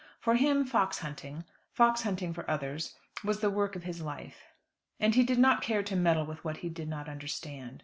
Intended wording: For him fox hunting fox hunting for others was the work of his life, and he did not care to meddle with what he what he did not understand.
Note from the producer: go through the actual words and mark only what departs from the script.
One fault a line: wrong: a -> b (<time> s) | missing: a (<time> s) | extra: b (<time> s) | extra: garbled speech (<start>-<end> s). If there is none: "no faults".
missing: what he (6.7 s)